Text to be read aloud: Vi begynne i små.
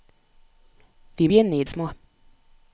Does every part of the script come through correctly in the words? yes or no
yes